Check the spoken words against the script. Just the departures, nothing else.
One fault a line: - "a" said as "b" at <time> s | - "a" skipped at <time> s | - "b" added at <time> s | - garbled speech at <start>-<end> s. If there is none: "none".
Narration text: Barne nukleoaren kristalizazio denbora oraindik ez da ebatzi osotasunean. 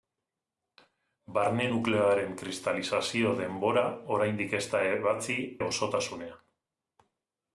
none